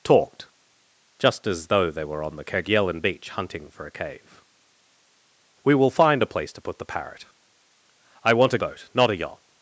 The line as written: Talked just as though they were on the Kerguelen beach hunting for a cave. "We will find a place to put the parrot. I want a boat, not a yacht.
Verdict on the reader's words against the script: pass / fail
pass